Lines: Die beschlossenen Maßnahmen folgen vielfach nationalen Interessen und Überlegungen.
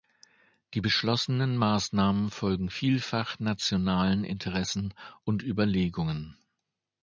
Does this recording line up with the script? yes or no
yes